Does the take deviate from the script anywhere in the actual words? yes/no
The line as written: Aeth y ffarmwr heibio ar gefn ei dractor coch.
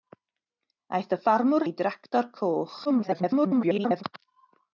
yes